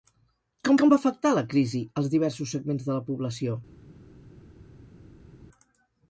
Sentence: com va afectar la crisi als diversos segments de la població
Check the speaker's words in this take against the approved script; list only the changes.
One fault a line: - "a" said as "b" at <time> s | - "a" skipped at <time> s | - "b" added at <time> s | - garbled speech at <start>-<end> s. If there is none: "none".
- "com" added at 0.8 s